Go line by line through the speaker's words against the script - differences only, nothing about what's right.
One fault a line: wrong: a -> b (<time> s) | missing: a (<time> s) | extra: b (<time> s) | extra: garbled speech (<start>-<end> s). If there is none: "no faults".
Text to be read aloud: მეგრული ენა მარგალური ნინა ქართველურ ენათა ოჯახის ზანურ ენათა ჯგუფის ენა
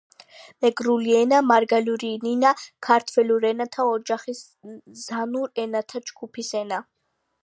no faults